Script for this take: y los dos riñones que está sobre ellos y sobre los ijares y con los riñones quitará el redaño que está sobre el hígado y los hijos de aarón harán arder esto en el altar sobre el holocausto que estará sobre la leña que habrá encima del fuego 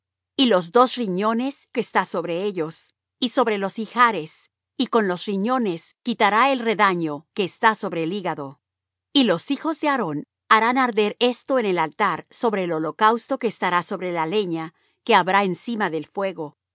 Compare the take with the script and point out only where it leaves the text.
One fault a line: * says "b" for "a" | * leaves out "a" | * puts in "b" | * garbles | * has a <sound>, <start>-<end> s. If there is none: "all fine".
all fine